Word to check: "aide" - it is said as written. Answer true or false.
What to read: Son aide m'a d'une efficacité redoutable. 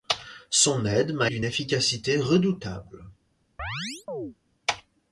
true